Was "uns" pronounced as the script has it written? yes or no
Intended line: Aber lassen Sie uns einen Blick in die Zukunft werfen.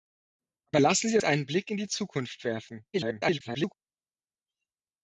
no